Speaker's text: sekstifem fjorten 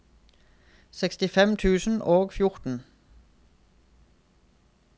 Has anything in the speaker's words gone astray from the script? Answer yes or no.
yes